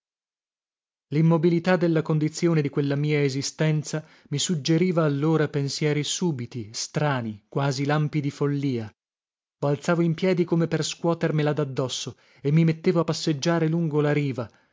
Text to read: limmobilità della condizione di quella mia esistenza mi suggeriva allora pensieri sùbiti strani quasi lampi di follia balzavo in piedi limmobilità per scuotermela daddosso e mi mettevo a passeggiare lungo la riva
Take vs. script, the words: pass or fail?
fail